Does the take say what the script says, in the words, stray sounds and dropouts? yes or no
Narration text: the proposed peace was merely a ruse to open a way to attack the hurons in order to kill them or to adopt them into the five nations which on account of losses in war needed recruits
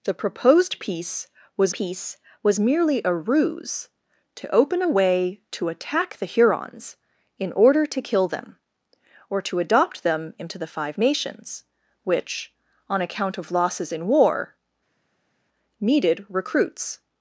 no